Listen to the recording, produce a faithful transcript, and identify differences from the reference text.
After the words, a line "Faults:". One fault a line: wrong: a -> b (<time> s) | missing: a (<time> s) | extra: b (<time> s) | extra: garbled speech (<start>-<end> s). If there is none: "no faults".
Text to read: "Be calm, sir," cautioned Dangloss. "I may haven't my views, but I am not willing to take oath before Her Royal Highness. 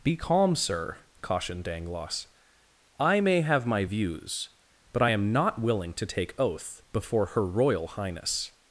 "Be calm, sir," cautioned Dangloss. "I may have my views, but I am not willing to take oath before Her Royal Highness.
Faults:
wrong: haven't -> have (3.4 s)